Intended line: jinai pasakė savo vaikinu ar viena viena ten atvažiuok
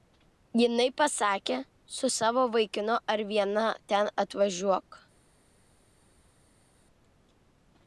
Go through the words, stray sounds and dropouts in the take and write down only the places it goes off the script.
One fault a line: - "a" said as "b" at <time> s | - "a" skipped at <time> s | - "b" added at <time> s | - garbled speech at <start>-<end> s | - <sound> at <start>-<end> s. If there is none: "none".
- "su" added at 2.0 s
- "viena" skipped at 3.7 s